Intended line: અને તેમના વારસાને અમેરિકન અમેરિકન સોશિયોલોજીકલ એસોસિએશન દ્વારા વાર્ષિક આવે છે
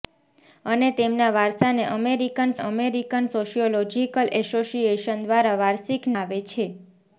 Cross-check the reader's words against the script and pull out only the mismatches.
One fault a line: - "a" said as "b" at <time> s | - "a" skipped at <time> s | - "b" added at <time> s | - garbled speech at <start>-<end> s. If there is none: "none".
none